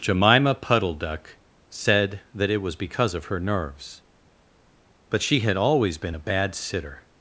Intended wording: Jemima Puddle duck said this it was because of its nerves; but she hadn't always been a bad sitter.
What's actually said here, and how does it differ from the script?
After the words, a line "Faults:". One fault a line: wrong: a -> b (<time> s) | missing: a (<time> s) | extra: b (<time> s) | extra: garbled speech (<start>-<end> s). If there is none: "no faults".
Jemima Puddle duck said that it was because of her nerves; but she had always been a bad sitter.
Faults:
wrong: this -> that (2.3 s)
wrong: its -> her (3.2 s)
wrong: hadn't -> had (5.4 s)